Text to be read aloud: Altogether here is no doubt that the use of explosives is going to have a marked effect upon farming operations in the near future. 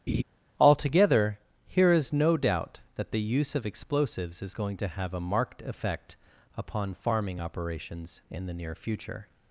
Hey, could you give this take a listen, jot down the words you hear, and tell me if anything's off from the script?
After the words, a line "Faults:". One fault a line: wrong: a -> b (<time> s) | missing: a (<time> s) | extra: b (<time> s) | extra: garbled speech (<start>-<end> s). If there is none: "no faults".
Altogether here is no doubt that the use of explosives is going to have a marked effect upon farming operations in the near future.
Faults:
no faults